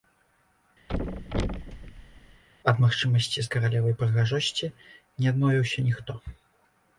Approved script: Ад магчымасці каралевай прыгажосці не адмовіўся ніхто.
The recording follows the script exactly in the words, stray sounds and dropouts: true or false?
false